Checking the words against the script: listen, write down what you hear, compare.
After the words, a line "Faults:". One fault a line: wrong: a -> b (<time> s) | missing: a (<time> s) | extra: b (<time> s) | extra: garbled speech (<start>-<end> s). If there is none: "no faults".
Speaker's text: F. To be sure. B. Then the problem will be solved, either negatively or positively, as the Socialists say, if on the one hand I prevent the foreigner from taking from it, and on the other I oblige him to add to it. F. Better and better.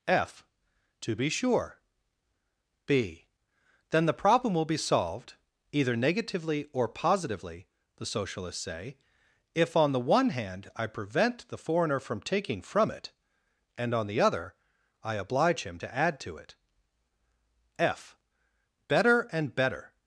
F. To be sure. B. Then the problem will be solved, either negatively or positively, the Socialists say, if on the one hand I prevent the foreigner from taking from it, and on the other I oblige him to add to it. F. Better and better.
Faults:
missing: as (7.7 s)